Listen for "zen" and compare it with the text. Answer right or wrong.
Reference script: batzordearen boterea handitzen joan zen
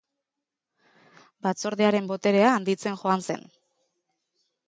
right